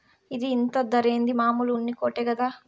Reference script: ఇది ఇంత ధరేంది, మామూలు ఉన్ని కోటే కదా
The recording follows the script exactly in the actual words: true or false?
true